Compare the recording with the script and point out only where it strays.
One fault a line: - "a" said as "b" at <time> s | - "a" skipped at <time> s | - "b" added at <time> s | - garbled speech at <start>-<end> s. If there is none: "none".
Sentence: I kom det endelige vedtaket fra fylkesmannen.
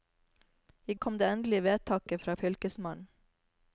none